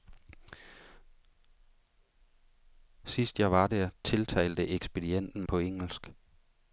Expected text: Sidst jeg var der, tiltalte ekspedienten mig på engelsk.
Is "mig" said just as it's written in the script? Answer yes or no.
no